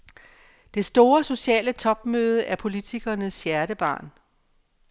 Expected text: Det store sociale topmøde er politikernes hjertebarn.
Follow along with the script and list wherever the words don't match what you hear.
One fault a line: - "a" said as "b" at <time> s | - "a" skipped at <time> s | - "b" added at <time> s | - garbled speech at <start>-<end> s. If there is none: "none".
none